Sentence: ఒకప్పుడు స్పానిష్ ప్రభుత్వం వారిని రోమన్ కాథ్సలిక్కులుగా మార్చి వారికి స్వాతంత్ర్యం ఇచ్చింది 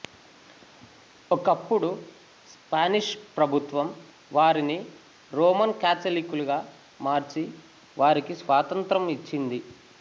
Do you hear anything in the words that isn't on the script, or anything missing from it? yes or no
no